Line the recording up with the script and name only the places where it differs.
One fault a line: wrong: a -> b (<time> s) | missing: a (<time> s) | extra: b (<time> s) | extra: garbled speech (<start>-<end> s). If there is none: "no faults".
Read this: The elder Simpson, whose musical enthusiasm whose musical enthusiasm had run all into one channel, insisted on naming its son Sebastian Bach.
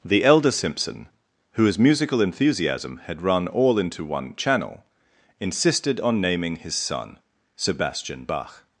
missing: whose musical enthusiasm (3.0 s)
wrong: its -> his (6.5 s)